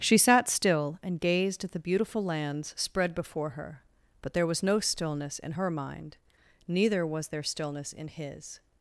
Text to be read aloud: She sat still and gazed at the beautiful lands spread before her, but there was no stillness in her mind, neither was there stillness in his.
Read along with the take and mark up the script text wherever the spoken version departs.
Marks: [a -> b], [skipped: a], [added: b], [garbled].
She sat still and gazed at the beautiful lands spread before her, but there was no stillness in her mind, neither was there stillness in his.